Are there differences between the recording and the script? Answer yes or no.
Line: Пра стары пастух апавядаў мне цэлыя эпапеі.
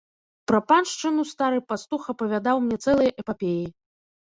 yes